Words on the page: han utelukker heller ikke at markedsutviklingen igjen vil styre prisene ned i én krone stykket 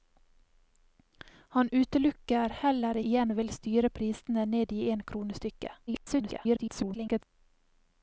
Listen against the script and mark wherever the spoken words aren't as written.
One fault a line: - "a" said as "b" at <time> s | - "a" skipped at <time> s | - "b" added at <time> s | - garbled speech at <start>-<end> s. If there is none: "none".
- "ikke at markedsutviklingen" skipped at 3.0 s
- garbled speech at 5.9-7.2 s